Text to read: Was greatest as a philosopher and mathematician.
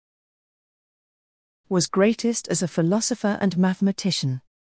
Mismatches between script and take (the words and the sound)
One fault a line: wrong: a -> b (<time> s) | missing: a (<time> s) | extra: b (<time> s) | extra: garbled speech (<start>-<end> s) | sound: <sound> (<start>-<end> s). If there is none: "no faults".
no faults